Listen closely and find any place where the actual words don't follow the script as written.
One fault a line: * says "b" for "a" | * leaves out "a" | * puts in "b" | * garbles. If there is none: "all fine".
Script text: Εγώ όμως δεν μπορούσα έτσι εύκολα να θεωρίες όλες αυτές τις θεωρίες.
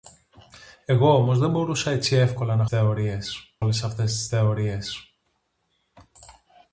all fine